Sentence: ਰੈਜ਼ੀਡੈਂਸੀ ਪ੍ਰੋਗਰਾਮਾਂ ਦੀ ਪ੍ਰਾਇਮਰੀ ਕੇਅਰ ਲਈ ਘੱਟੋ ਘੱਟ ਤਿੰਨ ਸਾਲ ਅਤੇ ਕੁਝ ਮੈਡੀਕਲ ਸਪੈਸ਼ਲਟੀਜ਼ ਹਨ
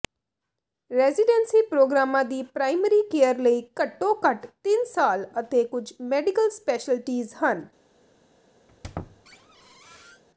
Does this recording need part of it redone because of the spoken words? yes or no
no